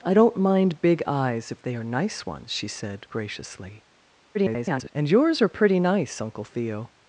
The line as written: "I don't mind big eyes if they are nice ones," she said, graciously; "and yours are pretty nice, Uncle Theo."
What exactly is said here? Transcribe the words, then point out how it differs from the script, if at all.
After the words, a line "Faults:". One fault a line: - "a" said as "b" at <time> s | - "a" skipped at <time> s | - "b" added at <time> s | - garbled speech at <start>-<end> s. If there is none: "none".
"I don't mind big eyes if they are nice ones," she said, graciously; [garbled] "and yours are pretty nice, Uncle Theo."
Faults:
- garbled speech at 4.3-4.9 s